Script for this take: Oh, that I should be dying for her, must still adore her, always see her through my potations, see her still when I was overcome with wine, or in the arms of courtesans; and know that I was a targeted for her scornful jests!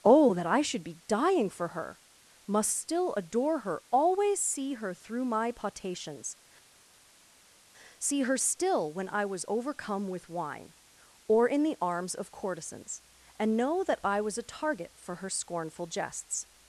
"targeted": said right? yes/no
no